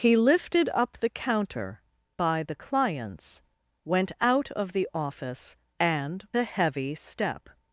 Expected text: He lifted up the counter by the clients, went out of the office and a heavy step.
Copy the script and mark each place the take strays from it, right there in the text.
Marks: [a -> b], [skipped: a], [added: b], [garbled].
He lifted up the counter by the clients, went out of the office and a heavy step.